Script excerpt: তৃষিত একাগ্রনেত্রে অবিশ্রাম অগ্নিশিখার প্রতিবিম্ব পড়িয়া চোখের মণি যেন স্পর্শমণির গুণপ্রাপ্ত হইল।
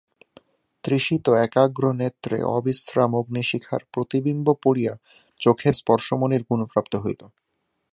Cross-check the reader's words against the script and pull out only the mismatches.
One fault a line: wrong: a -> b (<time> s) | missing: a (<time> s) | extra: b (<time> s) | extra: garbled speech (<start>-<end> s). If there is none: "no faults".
missing: মণি যেন (5.8 s)